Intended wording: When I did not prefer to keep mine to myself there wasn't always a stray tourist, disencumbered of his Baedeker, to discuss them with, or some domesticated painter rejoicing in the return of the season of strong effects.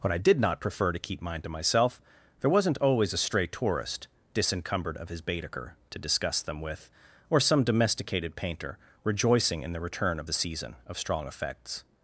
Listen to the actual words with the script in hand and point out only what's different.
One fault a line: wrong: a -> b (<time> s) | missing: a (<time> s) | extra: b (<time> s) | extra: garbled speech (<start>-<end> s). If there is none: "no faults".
no faults